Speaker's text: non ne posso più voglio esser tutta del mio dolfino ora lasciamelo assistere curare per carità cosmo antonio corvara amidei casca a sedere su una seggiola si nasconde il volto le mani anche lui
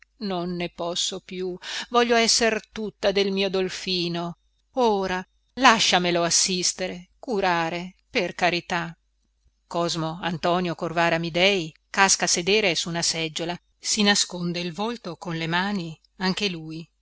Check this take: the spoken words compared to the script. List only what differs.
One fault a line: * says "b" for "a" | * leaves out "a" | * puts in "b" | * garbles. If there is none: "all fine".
* puts in "con"